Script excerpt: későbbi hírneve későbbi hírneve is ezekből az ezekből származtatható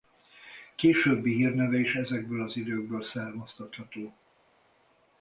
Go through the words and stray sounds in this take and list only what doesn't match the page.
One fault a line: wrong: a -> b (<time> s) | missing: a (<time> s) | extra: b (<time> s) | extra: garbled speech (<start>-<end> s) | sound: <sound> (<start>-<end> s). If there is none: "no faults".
missing: későbbi hírneve (1.8 s)
wrong: ezekből -> időkből (2.6 s)